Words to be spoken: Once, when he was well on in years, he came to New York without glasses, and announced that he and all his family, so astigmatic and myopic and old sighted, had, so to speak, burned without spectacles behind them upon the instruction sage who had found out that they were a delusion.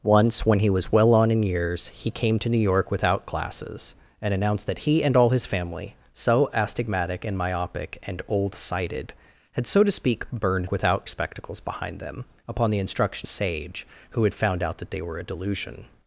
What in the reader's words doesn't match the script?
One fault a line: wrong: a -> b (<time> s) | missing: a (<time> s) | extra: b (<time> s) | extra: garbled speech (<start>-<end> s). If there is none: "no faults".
no faults